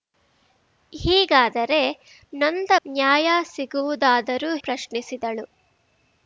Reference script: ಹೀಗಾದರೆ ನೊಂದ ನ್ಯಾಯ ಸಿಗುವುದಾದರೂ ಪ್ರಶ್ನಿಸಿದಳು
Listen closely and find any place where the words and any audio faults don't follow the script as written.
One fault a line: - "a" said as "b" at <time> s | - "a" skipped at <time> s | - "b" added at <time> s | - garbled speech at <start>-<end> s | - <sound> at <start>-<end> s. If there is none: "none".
none